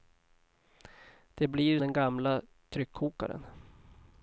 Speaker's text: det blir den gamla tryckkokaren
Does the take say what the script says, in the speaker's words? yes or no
yes